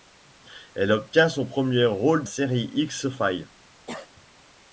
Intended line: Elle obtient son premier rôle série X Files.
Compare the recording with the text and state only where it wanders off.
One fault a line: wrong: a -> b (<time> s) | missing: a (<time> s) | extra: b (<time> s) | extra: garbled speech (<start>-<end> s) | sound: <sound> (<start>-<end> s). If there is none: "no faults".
sound: cough (3.9-4.3 s)